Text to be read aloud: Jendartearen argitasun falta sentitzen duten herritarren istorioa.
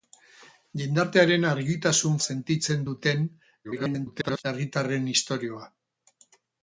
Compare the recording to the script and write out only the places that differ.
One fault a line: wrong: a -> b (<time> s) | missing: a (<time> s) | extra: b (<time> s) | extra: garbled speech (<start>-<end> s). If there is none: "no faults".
missing: falta (2.2 s)
extra: garbled speech (3.6-4.4 s)